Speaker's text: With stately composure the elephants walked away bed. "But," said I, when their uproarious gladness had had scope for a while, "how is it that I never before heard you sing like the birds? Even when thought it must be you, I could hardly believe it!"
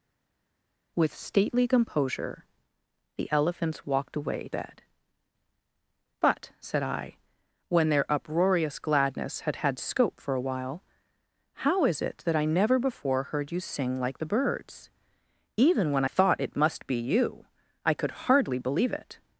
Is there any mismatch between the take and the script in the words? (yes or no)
no